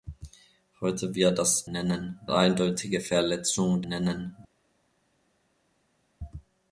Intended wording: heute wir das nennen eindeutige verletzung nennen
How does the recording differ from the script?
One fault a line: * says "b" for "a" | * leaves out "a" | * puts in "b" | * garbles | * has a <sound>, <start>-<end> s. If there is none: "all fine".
all fine